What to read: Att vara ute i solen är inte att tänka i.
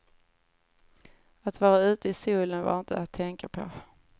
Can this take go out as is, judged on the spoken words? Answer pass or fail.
fail